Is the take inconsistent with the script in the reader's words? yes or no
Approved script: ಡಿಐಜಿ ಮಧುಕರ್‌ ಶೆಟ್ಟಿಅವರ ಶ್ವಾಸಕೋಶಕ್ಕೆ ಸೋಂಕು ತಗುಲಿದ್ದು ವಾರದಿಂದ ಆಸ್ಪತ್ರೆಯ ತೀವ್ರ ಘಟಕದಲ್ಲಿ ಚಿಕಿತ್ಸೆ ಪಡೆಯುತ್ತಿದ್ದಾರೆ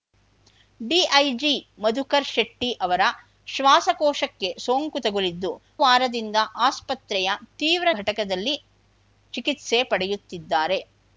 no